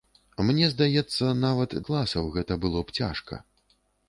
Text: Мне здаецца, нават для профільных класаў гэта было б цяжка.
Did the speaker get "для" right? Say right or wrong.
wrong